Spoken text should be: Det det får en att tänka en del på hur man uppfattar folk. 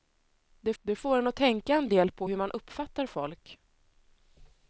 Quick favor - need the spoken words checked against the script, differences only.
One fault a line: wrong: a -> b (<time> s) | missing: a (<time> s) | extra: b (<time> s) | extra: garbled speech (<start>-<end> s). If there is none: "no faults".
no faults